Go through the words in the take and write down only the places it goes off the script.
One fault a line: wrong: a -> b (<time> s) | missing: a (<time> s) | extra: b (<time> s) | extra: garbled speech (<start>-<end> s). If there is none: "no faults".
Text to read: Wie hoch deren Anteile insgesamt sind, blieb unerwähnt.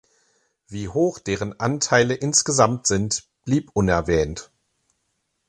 no faults